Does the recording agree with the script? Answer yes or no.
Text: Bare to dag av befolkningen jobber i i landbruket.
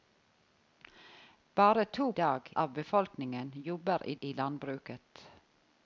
yes